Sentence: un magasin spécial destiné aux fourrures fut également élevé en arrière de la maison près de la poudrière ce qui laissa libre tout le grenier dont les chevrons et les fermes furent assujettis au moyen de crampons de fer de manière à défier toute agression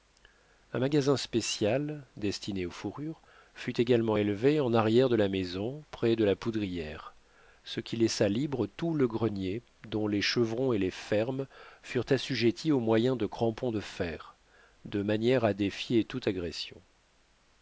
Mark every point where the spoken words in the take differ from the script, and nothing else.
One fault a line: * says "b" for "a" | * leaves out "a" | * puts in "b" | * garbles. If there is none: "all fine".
all fine